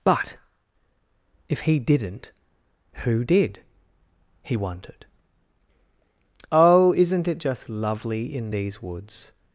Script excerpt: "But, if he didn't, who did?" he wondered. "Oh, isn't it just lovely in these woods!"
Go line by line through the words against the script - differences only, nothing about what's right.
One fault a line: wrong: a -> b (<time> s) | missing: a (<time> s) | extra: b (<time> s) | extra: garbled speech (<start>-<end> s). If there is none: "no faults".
no faults